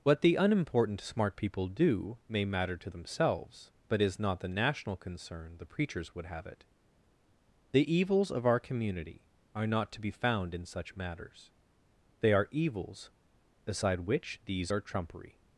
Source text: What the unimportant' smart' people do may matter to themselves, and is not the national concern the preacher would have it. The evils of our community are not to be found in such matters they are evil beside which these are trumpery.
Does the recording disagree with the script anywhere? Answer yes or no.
yes